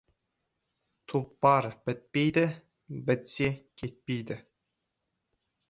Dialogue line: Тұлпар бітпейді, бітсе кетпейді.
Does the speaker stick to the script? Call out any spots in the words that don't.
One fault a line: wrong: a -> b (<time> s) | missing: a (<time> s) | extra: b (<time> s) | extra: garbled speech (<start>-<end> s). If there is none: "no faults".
no faults